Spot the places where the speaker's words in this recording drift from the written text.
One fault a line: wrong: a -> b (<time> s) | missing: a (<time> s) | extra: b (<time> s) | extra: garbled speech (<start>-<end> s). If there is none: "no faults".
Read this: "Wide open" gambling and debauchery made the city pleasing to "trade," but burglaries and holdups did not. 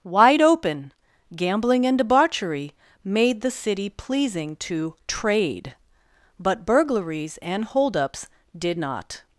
no faults